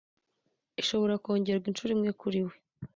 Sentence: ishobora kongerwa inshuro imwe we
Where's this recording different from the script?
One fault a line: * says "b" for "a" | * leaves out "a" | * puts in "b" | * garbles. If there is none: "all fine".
* puts in "kuri"